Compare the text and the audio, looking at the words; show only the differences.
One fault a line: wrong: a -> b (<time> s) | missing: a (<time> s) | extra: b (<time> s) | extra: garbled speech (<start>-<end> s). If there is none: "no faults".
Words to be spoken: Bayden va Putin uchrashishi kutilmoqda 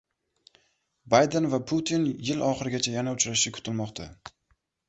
extra: yil oxirigacha yana (2.3 s)